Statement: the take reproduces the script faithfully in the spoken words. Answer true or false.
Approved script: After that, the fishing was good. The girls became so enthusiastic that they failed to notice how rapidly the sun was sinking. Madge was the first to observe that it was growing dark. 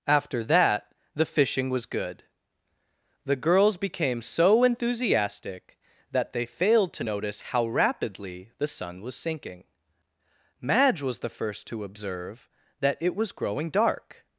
true